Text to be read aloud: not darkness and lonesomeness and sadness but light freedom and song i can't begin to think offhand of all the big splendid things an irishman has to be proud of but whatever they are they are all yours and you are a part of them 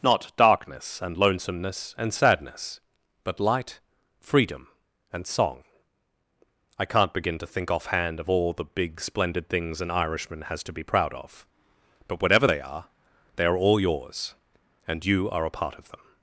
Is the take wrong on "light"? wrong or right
right